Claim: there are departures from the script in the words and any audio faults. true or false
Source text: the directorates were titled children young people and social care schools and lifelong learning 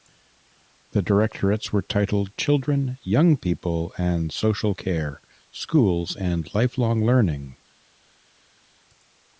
false